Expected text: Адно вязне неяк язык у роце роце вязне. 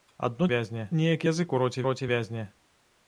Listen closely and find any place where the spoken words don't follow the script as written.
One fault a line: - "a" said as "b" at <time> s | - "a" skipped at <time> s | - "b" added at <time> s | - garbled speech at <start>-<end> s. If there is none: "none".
none